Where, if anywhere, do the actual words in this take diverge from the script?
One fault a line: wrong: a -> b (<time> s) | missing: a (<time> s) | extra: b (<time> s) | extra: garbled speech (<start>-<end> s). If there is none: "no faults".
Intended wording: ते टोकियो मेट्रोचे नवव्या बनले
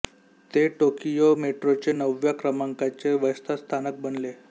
extra: क्रमांकाचे व्यस्त स्थानक (2.3 s)